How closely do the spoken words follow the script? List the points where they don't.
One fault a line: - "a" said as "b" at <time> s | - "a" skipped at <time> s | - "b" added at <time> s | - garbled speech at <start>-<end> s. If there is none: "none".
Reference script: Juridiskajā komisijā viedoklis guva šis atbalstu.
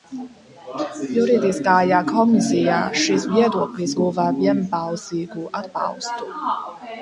- "šis" added at 3.0 s
- "šis" said as "vienbalsīgu" at 4.4 s